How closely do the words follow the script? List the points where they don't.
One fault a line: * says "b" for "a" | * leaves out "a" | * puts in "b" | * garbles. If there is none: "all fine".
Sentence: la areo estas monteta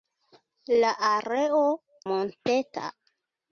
* leaves out "estas"